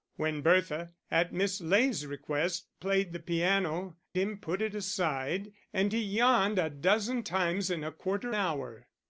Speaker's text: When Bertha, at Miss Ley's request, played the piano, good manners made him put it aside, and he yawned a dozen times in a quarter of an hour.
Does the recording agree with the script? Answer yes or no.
no